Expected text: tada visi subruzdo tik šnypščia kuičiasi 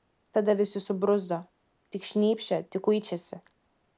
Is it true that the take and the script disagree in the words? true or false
true